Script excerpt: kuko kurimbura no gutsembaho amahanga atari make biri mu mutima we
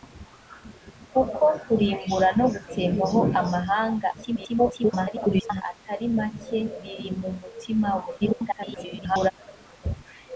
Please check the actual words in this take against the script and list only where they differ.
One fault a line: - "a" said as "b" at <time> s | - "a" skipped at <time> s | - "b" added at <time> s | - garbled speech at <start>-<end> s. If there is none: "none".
- garbled speech at 4.1-5.6 s
- garbled speech at 8.2-9.3 s